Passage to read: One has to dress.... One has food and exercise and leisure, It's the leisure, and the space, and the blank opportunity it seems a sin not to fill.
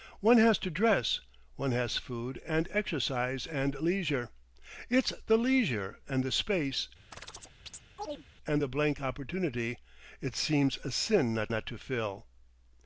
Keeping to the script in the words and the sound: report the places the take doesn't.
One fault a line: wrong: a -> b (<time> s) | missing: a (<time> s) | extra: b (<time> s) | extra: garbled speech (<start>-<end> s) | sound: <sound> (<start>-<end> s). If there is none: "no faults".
sound: chirp (7.1-8.3 s)
extra: not (11.5 s)